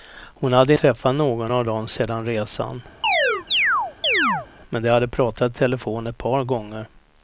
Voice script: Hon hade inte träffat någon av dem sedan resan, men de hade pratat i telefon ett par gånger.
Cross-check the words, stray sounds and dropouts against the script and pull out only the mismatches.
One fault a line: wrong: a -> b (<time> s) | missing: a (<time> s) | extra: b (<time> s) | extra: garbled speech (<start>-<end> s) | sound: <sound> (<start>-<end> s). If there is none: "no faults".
missing: inte (0.7 s)
sound: chirp (3.0-4.5 s)